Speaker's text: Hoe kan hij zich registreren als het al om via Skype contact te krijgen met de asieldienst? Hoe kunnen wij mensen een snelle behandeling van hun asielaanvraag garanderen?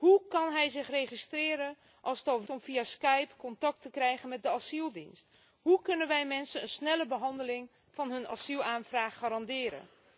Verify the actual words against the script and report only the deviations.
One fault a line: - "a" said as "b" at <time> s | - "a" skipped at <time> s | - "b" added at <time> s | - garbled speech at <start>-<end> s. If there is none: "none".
none